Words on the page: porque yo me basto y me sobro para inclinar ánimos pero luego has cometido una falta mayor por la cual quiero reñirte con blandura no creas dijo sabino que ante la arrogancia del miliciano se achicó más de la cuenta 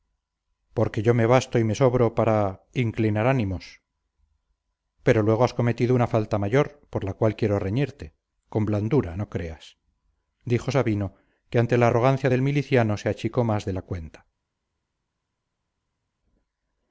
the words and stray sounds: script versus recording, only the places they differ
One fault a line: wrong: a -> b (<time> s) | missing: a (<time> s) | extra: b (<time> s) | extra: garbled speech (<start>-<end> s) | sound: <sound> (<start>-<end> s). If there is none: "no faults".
no faults